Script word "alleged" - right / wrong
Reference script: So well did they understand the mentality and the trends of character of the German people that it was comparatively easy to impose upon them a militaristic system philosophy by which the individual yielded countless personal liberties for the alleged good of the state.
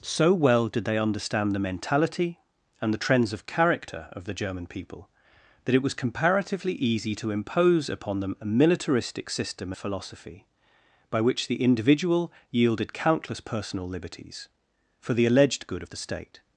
right